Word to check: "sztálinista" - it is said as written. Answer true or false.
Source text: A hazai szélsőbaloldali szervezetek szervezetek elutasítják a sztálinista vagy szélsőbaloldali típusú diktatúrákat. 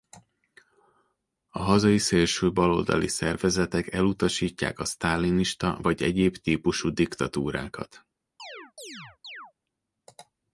true